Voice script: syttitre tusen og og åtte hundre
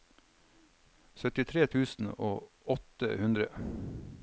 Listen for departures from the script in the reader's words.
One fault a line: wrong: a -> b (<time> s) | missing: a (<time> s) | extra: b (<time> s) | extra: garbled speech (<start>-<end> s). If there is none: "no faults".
missing: og (2.7 s)